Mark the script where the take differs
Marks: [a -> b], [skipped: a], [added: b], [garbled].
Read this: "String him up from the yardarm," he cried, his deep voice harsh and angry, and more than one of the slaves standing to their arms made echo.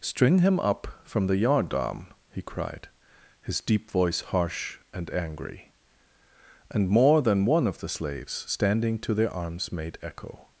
"String him up from the yardarm," he cried, his deep voice harsh and angry, and more than one of the slaves standing to their arms made echo.